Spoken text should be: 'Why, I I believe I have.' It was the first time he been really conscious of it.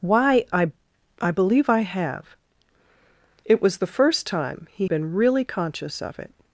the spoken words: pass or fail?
pass